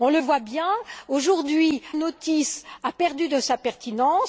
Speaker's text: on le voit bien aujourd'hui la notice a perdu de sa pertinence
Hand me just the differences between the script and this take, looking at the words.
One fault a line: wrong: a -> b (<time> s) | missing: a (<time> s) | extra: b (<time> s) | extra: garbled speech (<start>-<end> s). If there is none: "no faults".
missing: la (1.8 s)